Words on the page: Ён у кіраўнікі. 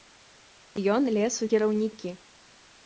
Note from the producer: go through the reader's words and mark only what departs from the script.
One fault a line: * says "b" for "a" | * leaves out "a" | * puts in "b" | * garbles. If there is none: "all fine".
* puts in "лез"